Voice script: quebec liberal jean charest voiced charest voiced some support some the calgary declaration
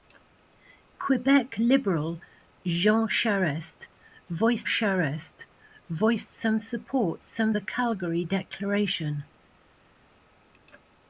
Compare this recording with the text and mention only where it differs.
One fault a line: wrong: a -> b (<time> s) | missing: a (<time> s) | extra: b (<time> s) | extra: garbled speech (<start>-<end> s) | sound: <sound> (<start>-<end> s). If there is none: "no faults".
no faults